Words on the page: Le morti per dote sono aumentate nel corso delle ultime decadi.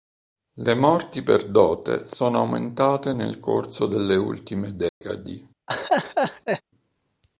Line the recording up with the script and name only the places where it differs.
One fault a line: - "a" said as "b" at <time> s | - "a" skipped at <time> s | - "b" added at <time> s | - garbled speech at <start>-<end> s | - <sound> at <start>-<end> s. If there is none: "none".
- dropout at 4.9-5.0 s
- laugh at 5.7-6.6 s